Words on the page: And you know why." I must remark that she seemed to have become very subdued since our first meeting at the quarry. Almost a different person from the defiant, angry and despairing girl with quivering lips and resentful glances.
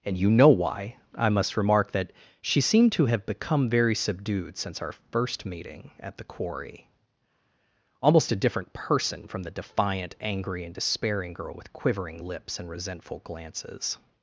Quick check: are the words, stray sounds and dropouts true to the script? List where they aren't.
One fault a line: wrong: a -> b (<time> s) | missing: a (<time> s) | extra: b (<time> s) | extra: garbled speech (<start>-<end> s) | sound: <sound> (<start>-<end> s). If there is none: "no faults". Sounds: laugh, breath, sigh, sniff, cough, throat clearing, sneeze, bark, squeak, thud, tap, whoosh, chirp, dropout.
no faults